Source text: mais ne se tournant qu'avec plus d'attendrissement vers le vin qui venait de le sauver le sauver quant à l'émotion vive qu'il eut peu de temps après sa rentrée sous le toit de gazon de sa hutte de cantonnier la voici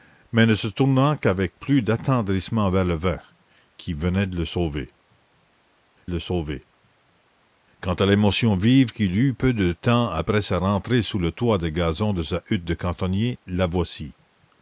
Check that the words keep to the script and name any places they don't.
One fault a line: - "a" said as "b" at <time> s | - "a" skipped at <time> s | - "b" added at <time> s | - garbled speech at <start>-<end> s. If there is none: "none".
none